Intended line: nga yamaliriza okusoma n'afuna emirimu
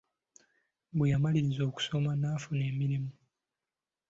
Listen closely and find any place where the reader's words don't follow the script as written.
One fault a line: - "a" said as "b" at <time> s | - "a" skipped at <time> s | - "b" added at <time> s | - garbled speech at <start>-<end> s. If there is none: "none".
- "nga" said as "bwe" at 0.9 s